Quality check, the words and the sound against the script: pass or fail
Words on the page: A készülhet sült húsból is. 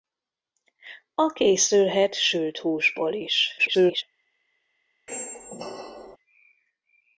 fail